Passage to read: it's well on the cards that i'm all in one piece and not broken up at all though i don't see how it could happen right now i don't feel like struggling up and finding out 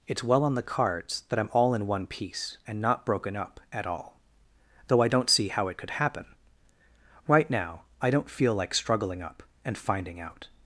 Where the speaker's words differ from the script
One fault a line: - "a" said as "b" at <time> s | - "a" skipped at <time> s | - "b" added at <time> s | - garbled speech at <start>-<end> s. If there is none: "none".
none